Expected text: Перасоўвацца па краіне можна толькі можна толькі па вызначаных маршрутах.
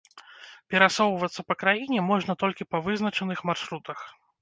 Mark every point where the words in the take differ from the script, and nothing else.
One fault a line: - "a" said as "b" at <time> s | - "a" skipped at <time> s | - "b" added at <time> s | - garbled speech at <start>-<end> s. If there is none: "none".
- "можна толькі" skipped at 2.7 s